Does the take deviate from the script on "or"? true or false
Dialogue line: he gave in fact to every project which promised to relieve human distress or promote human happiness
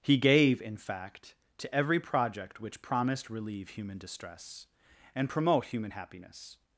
true